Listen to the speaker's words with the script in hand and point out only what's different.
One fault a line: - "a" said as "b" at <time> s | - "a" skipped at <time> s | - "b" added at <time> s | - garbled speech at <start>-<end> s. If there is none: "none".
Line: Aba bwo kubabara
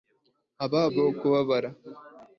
none